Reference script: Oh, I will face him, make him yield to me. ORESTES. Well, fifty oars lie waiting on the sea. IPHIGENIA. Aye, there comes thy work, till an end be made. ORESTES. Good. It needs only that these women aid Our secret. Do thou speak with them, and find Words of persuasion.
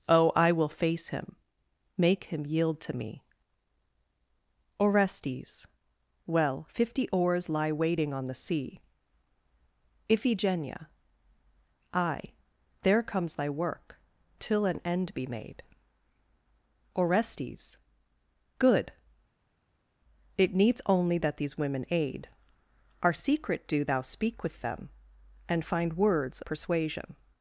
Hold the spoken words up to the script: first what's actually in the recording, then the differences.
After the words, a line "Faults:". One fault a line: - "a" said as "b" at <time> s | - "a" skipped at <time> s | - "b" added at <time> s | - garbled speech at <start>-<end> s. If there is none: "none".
Oh, I will face him, make him yield to me. ORESTES. Well, fifty oars lie waiting on the sea. IPHIGENIA. Aye, there comes thy work, till an end be made. ORESTES. Good. It needs only that these women aid Our secret. Do thou speak with them, and find Words persuasion.
Faults:
- "of" skipped at 26.4 s